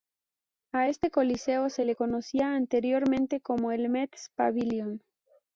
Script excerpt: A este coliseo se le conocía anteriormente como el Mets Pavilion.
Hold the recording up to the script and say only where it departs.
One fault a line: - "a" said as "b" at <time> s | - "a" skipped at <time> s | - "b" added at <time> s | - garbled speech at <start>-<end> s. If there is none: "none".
none